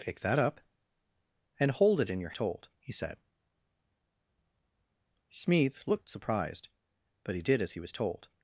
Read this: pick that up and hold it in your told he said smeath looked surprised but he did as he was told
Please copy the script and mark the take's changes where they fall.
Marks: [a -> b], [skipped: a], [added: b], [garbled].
pick that up and hold it in your told he said smeath looked surprised but he did as he was told